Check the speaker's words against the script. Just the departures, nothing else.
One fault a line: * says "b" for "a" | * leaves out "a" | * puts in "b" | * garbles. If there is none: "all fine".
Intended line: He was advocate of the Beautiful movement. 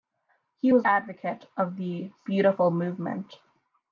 all fine